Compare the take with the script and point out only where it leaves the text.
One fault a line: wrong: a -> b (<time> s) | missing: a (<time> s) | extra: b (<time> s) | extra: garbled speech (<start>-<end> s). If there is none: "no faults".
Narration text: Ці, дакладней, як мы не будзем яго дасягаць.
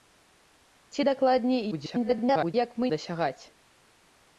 extra: garbled speech (1.7-2.5 s)
missing: не будзем яго (2.9 s)